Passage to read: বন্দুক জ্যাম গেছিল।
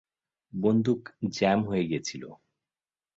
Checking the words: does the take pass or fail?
fail